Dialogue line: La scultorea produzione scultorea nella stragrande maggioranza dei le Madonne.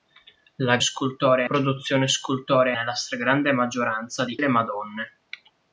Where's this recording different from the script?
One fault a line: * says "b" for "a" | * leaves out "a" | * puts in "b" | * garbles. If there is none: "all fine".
all fine